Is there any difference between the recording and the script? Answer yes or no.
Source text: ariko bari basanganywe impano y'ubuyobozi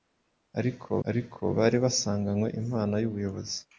yes